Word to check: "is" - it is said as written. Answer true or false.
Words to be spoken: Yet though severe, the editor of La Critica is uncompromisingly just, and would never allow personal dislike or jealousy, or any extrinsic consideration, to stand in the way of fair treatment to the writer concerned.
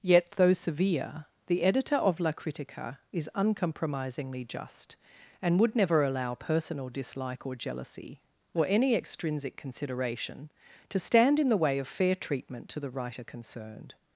true